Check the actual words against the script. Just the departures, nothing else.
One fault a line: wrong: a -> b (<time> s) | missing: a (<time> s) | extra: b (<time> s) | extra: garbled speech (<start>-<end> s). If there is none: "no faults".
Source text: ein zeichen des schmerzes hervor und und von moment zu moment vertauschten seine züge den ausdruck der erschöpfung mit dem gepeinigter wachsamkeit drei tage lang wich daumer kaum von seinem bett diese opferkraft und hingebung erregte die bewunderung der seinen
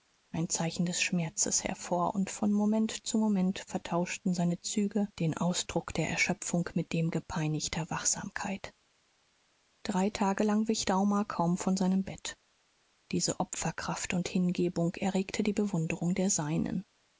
missing: und (2.3 s)